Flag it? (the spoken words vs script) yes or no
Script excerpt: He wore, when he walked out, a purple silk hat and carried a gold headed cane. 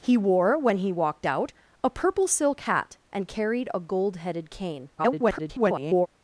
yes